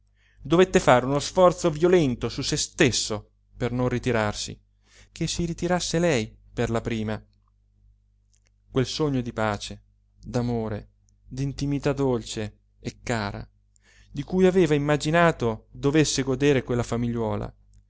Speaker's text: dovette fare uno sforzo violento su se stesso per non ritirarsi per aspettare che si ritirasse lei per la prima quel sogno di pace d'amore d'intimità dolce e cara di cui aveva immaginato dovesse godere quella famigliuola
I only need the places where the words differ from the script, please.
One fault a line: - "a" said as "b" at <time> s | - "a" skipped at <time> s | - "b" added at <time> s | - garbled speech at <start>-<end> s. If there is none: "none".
- "per aspettare" skipped at 4.6 s